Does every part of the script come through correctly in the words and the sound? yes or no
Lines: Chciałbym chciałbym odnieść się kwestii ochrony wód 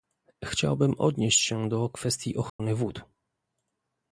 no